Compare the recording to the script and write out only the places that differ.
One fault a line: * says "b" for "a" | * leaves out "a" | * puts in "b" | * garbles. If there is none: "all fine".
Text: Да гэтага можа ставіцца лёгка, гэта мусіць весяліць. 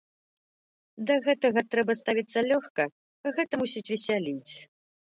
* says "трэба" for "можа"